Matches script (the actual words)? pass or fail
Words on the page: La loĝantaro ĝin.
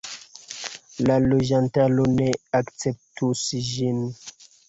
fail